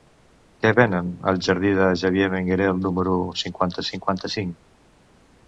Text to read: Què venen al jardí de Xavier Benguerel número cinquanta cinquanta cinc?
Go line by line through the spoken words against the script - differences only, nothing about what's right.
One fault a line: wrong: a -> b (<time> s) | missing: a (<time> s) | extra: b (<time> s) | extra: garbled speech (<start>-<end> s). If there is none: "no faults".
no faults